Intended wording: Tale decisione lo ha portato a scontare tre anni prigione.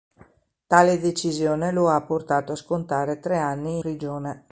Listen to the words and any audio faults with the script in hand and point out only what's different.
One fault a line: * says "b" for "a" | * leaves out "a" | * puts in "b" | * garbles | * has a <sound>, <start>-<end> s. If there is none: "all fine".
all fine